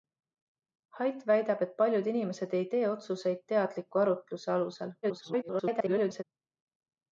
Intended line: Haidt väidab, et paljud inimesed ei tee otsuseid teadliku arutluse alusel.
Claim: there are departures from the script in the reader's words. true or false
true